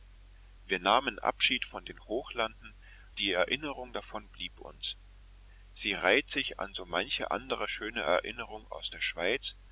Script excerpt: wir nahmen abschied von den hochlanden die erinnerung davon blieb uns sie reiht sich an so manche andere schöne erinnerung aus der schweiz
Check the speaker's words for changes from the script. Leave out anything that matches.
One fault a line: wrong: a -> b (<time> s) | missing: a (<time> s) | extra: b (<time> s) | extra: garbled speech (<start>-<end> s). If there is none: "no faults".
no faults